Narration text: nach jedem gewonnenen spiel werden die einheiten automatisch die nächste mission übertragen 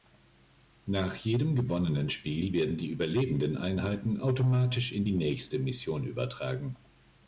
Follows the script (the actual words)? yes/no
no